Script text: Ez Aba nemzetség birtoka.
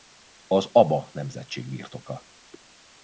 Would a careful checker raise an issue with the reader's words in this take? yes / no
yes